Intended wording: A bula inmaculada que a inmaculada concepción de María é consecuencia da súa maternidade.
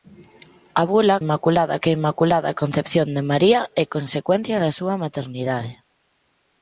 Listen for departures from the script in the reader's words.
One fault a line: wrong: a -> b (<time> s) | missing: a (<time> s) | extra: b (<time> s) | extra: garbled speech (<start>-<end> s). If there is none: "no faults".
no faults